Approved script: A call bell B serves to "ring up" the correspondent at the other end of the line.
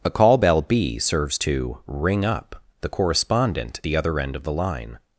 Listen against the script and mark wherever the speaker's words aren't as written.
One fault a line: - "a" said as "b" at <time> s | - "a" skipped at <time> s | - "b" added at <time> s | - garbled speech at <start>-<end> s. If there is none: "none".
- "at" skipped at 3.8 s